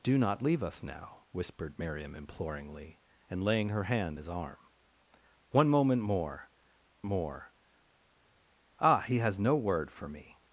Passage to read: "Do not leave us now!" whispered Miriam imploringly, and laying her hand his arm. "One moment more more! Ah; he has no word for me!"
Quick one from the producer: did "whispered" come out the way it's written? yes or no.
yes